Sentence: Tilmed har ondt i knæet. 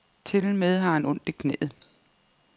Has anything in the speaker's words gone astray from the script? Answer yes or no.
yes